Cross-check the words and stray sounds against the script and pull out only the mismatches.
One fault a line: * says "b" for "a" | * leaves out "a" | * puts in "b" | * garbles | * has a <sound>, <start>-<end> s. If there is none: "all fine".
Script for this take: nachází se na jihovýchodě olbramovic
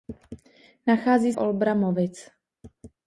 * leaves out "se na jihovýchodě"